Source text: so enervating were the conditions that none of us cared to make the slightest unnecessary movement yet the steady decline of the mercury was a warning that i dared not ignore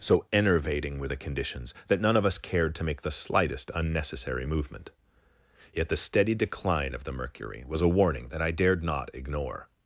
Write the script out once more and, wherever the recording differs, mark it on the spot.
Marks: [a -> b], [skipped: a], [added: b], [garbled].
so enervating were the conditions that none of us cared to make the slightest unnecessary movement yet the steady decline of the mercury was a warning that i dared not ignore